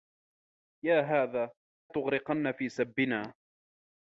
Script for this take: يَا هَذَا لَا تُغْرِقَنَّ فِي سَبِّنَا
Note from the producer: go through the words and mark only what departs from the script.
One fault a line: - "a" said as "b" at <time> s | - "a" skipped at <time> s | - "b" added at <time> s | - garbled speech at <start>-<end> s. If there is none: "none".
- "لَا" skipped at 1.5 s